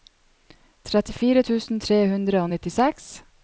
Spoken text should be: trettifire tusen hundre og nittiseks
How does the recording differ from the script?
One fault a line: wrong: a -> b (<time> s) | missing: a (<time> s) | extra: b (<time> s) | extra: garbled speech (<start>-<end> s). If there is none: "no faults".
extra: tre (1.9 s)